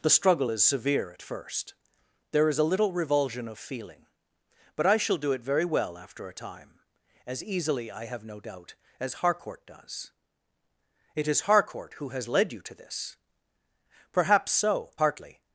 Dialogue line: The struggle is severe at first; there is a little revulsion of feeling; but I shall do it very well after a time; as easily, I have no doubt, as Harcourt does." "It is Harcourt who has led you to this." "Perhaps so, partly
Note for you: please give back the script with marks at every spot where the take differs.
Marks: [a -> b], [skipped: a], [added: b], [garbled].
The struggle is severe at first; there is a little revulsion of feeling; but I shall do it very well after a time; as easily, I have no doubt, as Harcourt does." "It is Harcourt who has led you to this." "Perhaps so, partly